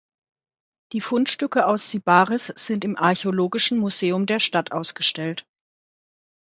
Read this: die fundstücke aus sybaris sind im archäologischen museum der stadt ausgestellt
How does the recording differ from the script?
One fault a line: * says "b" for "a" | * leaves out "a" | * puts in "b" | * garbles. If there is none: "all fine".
all fine